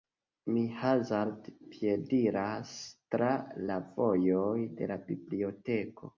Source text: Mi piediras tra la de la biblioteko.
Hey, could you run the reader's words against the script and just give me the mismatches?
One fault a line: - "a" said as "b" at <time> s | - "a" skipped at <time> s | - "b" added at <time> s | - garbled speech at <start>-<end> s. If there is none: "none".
- "hazarde" added at 0.8 s
- "vojoj" added at 4.0 s